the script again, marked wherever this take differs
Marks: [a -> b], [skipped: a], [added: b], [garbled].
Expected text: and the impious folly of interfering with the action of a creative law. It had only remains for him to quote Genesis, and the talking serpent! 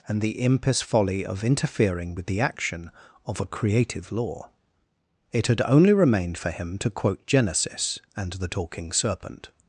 and the impious folly of interfering with the action of a creative law. It had only [remains -> remained] for him to quote Genesis, and the talking serpent!